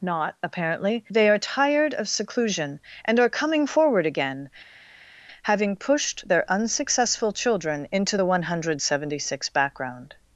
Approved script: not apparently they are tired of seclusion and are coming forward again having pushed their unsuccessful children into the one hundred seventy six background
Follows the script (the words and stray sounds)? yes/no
yes